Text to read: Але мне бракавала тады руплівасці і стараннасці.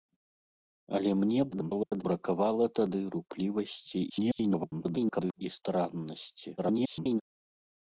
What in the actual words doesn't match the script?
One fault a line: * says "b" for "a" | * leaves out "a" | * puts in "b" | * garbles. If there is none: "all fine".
* garbles
* garbles
* garbles